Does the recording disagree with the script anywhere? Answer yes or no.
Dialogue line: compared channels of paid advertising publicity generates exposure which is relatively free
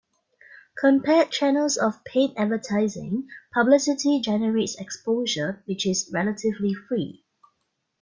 no